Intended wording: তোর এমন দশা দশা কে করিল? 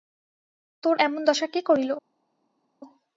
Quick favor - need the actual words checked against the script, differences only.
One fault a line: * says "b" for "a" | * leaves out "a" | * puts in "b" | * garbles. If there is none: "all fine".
* leaves out "দশা"